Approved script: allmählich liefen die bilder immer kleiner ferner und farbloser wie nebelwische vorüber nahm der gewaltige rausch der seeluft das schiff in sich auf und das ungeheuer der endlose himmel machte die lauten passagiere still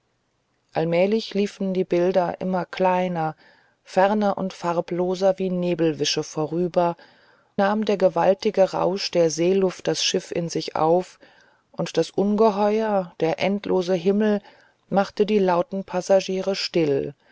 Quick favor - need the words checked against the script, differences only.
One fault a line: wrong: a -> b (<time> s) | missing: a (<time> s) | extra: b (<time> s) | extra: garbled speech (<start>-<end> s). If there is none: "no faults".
no faults